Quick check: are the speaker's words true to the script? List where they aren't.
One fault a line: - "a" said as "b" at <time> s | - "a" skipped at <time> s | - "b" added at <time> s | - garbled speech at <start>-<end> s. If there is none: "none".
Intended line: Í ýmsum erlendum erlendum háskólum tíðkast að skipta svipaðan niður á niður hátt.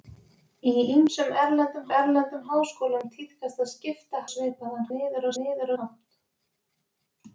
none